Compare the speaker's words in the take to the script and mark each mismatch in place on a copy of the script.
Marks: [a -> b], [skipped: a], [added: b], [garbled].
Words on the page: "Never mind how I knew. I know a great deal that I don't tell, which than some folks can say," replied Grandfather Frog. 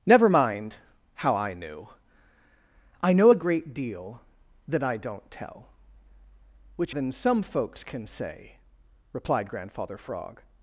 "Never mind how I knew. I know a great deal that I don't tell, which than some folks can say," replied Grandfather Frog.